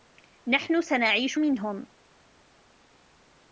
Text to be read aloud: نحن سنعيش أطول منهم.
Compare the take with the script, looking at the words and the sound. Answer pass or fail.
fail